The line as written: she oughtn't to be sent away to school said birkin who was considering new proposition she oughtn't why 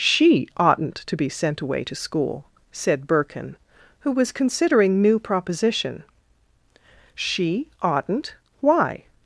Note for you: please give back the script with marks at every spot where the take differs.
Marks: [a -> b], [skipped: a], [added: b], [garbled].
she oughtn't to be sent away to school said birkin who was considering new proposition she oughtn't why